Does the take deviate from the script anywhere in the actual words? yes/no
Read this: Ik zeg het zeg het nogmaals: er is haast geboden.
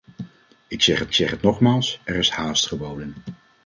no